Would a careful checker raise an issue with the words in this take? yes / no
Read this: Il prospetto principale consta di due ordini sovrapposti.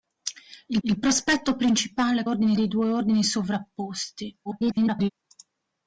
yes